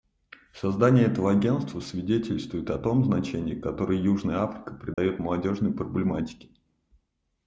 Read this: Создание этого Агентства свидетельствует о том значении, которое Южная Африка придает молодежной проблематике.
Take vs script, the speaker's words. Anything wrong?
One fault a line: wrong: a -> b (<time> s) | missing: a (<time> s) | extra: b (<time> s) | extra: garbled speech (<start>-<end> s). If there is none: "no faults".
no faults